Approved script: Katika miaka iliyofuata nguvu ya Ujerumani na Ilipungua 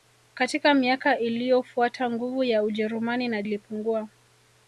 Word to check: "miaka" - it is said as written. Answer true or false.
true